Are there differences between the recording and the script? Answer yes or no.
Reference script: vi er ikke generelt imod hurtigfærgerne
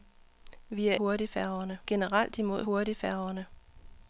yes